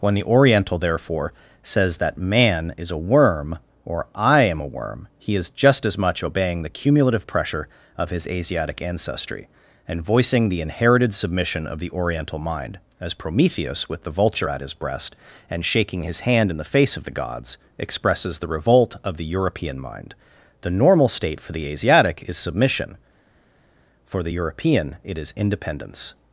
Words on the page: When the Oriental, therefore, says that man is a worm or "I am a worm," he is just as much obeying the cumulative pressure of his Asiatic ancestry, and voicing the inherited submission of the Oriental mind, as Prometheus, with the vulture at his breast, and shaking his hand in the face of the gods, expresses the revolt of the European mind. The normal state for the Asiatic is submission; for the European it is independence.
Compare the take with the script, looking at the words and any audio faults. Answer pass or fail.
pass